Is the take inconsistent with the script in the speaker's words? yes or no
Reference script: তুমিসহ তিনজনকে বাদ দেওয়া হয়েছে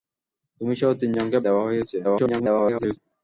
yes